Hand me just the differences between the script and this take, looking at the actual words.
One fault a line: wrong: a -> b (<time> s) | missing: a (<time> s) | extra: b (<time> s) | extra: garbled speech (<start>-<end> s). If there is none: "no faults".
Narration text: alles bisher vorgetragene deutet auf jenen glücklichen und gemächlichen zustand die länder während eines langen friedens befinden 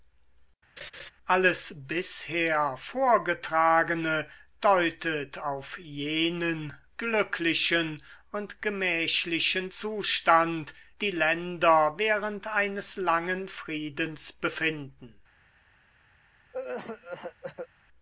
no faults